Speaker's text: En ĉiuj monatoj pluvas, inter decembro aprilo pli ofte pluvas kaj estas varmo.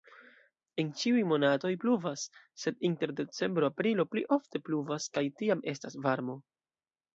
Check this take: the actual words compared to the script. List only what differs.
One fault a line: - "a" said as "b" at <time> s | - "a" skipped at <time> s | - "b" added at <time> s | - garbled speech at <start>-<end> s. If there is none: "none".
- "sed" added at 2.7 s
- "tiam" added at 5.4 s